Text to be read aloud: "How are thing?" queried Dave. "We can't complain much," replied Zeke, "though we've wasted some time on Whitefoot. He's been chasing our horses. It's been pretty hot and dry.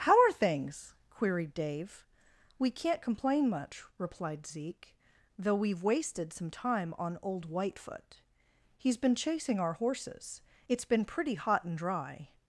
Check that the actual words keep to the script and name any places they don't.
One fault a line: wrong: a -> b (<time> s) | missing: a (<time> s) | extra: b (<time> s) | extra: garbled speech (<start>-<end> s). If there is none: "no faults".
wrong: thing -> things (0.3 s)
extra: old (7.2 s)